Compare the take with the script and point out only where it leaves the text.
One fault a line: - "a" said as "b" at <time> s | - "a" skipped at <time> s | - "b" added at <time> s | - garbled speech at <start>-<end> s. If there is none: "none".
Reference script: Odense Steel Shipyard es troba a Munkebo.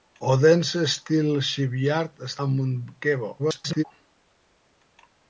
- "troba" skipped at 2.4 s
- garbled speech at 3.4-3.8 s